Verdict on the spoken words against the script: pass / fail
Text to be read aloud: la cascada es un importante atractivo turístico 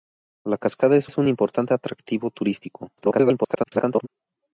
fail